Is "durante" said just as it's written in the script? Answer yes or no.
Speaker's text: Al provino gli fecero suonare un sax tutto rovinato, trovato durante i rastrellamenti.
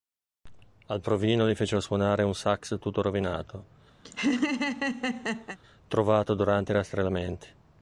yes